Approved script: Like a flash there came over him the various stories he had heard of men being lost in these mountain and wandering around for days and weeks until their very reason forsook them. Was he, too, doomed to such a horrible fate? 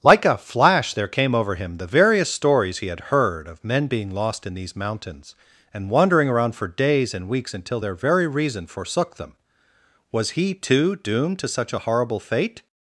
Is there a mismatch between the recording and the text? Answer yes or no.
yes